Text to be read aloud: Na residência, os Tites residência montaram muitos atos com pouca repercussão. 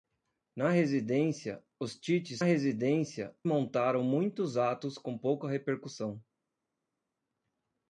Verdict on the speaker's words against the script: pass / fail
pass